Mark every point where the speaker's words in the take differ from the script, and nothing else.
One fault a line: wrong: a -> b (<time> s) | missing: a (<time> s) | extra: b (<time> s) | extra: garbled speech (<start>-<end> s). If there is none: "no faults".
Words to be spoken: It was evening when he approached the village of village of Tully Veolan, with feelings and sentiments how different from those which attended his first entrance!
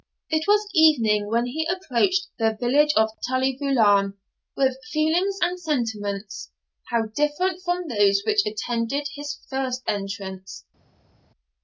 missing: village of (3.1 s)